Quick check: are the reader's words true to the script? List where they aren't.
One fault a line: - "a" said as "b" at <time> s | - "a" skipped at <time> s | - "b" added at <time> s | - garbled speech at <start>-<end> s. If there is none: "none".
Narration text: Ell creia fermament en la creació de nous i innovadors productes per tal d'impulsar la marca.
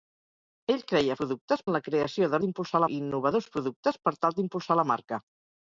- "fermament" said as "productes" at 1.2 s
- "nous" said as "d'impulsar" at 2.4 s